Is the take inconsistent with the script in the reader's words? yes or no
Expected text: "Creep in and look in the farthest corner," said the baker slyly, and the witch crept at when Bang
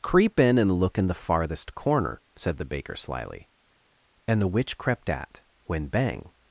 no